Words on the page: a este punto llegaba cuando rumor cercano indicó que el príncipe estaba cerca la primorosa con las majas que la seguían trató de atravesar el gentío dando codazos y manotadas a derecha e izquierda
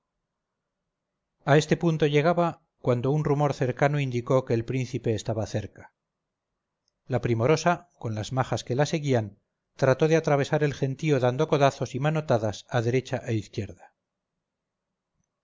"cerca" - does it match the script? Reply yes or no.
yes